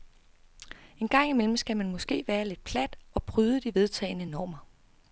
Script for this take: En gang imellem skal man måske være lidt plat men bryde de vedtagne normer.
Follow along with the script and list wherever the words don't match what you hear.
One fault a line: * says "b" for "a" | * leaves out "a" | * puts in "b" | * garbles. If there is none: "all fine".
* says "og" for "men"